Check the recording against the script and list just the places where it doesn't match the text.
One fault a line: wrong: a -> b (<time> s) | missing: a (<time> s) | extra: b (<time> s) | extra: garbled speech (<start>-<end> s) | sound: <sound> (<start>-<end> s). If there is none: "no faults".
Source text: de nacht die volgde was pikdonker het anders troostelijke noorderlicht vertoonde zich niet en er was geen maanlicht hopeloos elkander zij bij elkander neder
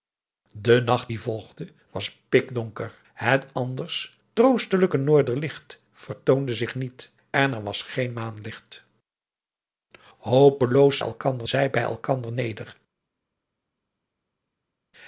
no faults